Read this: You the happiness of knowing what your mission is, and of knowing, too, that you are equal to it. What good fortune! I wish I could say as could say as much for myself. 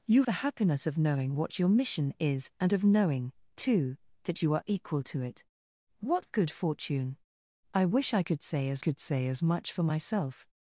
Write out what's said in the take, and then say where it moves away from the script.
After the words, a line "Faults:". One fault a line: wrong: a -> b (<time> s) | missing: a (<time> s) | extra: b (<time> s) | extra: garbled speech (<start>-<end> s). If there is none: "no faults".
You the happiness of knowing what your mission is, and of knowing, too, that you are equal to it. What good fortune! I wish I could say as could say as much for myself.
Faults:
no faults